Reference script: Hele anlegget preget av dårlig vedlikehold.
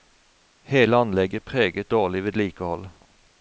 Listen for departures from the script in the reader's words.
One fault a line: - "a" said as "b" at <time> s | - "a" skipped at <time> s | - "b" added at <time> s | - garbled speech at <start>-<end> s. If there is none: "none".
- "av" skipped at 1.9 s